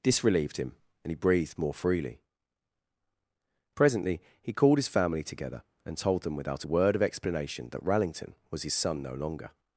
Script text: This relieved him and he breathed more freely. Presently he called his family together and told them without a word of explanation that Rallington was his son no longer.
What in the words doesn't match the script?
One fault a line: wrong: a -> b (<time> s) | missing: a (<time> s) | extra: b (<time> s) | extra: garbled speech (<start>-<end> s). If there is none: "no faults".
no faults